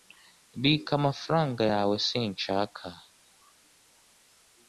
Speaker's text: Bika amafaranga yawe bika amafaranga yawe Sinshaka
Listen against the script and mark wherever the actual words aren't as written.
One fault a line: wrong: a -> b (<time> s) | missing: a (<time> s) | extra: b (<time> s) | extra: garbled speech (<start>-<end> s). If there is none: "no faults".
missing: bika amafaranga yawe (2.0 s)